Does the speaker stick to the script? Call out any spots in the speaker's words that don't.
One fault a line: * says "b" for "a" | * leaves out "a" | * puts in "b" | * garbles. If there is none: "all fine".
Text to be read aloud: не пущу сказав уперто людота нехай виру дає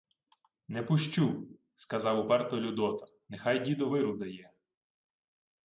* puts in "дідо"